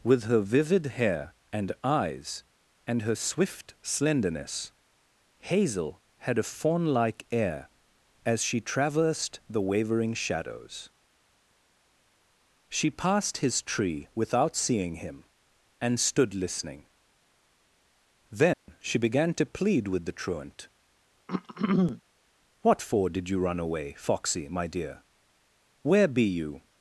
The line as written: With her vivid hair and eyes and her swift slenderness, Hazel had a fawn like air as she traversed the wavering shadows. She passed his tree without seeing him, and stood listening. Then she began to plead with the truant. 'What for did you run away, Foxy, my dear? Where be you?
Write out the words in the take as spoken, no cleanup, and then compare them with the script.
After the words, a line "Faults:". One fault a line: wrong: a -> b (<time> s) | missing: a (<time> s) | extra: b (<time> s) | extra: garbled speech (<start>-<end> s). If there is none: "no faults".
With her vivid hair and eyes and her swift slenderness, Hazel had a fawn like air as she traversed the wavering shadows. She passed his tree without seeing him, and stood listening. Then she began to plead with the truant. 'What for did you run away, Foxy, my dear? Where be you?
Faults:
no faults